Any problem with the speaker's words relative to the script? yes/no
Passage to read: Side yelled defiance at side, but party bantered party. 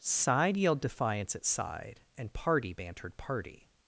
yes